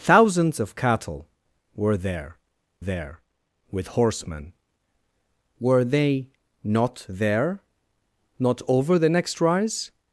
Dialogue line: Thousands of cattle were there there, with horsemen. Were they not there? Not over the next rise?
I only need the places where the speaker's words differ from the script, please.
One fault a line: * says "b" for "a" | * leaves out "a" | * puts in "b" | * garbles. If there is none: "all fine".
all fine